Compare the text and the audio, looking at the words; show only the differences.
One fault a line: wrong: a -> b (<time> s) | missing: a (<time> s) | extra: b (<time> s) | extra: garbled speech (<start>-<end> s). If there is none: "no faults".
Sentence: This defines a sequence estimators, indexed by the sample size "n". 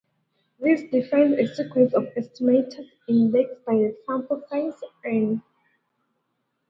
extra: of (1.9 s)